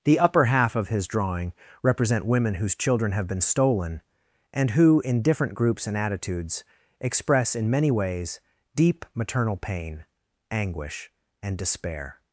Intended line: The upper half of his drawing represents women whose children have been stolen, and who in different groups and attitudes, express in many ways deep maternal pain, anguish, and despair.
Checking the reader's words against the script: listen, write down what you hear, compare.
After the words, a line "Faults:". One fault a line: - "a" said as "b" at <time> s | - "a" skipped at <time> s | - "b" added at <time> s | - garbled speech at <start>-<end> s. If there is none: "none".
The upper half of his drawing represent women whose children have been stolen, and who in different groups and attitudes, express in many ways deep maternal pain, anguish, and despair.
Faults:
- "represents" said as "represent" at 1.8 s